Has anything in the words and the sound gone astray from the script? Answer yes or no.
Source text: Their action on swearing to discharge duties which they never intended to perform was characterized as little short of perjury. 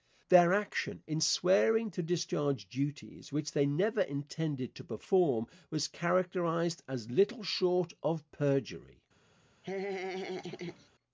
yes